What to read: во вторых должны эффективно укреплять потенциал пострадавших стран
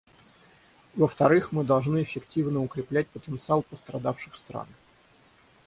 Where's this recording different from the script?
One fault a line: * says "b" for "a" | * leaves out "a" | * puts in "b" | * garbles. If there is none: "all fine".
* puts in "мы"